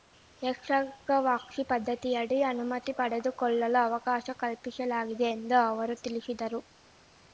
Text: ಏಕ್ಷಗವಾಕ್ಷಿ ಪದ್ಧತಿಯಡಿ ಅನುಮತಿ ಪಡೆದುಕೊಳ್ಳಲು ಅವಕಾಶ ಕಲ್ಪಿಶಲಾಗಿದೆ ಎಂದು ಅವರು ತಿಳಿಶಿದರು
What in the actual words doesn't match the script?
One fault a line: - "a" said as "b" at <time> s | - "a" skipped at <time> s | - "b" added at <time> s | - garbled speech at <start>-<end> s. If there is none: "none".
none